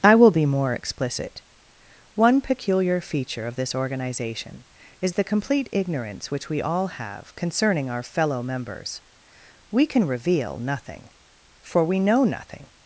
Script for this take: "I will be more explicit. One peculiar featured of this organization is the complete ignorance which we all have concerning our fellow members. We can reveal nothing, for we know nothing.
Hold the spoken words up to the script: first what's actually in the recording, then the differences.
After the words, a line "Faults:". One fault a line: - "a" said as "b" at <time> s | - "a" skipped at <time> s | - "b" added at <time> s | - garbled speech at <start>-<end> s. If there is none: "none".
"I will be more explicit. One peculiar feature of this organization is the complete ignorance which we all have concerning our fellow members. We can reveal nothing, for we know nothing.
Faults:
- "featured" said as "feature" at 3.0 s